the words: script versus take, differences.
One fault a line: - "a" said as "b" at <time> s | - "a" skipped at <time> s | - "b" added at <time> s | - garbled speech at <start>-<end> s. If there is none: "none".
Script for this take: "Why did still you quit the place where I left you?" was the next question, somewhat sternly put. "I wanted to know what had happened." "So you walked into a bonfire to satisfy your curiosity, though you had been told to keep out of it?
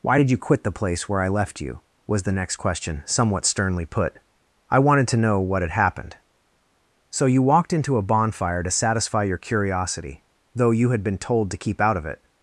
- "still" skipped at 0.3 s